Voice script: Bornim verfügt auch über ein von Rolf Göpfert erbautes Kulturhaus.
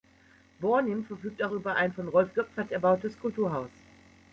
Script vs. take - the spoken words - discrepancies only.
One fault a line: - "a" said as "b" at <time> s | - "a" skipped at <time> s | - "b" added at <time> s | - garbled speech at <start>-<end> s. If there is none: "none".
none